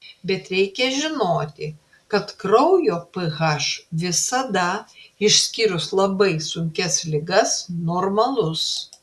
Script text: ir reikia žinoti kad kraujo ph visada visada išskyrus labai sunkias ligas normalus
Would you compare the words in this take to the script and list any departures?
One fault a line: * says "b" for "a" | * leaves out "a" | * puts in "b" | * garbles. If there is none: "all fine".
* says "bet" for "ir"
* leaves out "visada"